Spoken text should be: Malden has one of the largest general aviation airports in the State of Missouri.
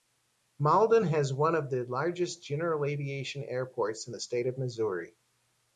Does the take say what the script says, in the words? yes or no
yes